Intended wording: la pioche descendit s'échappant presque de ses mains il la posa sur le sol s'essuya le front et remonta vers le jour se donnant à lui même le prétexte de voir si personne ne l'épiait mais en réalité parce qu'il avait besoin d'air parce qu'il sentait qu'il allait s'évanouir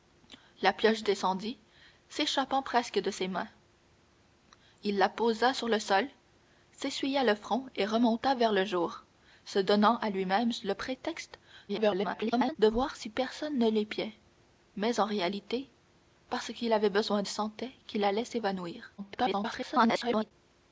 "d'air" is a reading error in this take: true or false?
true